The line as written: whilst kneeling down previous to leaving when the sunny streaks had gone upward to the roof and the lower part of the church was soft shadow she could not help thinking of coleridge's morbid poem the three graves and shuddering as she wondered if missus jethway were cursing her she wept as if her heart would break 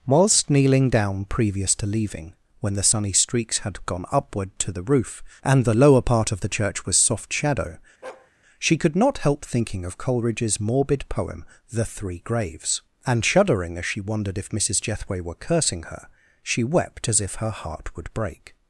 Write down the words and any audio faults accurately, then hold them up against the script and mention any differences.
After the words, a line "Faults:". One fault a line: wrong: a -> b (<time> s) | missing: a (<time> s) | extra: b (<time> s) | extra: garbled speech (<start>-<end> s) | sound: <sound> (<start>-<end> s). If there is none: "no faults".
whilst kneeling down previous to leaving when the sunny streaks had gone upward to the roof and the lower part of the church was soft shadow she could not help thinking of coleridge's morbid poem the three graves and shuddering as she wondered if missus jethway were cursing her she wept as if her heart would break
Faults:
sound: bark (8.0-8.3 s)